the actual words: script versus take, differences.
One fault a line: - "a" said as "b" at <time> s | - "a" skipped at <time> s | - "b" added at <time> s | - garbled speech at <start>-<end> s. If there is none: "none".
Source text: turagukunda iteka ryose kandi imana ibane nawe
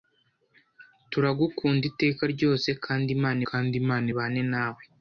- "kandi imana" added at 3.5 s